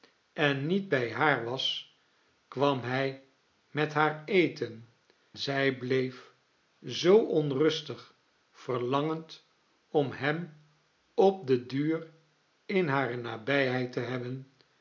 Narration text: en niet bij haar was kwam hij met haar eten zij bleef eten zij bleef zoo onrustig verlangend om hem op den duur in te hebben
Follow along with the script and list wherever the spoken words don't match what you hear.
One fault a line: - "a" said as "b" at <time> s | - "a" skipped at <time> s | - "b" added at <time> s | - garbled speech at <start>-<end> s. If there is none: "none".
- "eten zij bleef" skipped at 6.3 s
- "hare nabijheid" added at 12.9 s